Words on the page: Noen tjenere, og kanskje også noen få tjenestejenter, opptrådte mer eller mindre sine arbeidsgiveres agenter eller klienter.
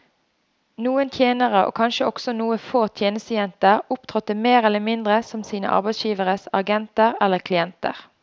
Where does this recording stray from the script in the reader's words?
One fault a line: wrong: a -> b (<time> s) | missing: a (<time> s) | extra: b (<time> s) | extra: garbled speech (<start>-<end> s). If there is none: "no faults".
extra: som (5.3 s)